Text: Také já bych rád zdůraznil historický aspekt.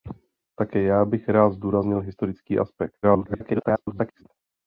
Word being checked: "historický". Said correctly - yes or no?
yes